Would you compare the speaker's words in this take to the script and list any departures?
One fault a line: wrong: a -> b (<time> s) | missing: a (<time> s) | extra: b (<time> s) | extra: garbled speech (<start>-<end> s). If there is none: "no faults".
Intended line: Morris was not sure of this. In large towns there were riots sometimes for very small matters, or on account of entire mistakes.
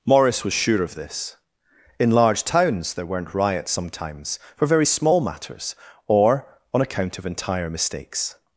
missing: not (0.5 s)
wrong: were -> weren't (3.1 s)